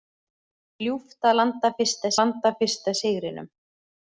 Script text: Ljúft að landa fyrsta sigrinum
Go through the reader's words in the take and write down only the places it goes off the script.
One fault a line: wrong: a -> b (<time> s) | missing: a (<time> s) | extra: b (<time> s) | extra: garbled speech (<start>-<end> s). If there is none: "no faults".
extra: landa fyrsta (2.2 s)